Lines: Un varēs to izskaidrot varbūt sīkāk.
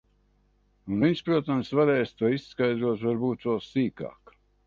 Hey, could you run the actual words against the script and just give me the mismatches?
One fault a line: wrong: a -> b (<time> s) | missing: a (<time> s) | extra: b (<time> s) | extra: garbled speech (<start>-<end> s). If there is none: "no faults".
extra: viņš protams (1.0 s)
extra: vēl (3.5 s)